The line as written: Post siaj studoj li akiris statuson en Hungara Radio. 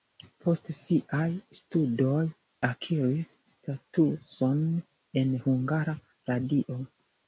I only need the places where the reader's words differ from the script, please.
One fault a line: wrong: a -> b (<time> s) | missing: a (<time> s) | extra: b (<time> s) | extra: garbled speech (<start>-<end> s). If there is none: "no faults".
missing: li (2.2 s)